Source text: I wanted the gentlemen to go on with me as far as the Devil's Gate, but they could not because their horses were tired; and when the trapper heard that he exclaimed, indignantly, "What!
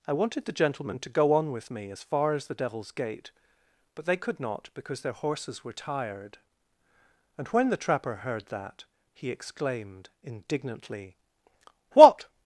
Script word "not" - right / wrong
right